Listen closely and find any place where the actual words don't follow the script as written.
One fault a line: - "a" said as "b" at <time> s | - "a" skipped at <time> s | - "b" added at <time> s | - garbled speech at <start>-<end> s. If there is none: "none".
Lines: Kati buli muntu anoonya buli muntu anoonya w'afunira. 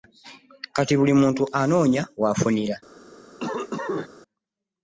- "buli muntu anoonya" skipped at 2.0 s